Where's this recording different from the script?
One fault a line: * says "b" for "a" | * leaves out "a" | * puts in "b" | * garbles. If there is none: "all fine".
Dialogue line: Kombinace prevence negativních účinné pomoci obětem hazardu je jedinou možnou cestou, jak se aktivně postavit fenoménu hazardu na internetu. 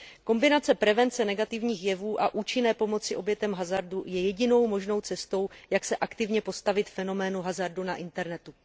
* puts in "jevů a"